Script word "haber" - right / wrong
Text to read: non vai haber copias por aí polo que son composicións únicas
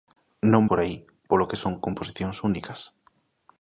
wrong